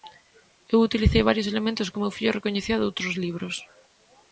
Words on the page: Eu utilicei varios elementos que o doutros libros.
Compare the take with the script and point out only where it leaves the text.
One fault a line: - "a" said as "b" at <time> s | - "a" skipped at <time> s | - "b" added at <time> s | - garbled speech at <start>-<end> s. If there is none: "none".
- "meu fillo recoñecía" added at 2.0 s